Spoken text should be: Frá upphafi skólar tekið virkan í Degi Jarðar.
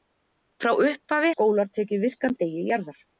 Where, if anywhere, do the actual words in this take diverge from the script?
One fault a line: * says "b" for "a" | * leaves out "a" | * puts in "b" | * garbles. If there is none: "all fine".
all fine